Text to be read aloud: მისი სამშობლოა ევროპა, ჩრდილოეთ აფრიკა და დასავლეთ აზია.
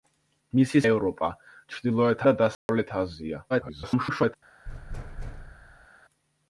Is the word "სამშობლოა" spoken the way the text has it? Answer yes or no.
no